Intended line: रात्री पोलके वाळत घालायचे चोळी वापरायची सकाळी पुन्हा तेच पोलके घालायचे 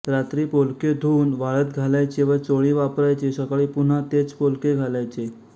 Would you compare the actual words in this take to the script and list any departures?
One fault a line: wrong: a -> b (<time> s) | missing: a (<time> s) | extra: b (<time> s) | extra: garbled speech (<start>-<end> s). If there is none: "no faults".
extra: धुवून (0.9 s)
extra: व (2.2 s)